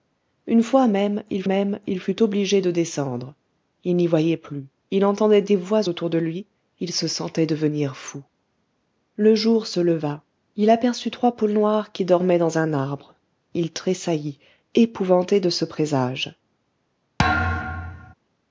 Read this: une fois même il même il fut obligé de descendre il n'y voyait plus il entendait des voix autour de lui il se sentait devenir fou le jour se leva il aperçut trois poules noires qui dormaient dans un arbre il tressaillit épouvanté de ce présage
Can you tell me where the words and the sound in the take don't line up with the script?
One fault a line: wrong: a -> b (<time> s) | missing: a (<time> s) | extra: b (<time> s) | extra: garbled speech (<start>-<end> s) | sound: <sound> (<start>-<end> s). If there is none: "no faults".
sound: thud (17.2-18.1 s)